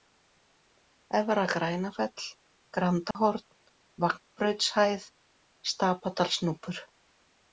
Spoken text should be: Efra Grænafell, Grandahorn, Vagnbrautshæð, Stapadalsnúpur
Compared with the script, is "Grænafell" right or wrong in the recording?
right